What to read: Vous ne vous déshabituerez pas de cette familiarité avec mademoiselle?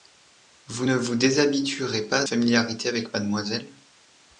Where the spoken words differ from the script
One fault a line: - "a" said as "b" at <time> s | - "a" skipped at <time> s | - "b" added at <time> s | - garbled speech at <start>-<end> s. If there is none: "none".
- "de cette" skipped at 2.2 s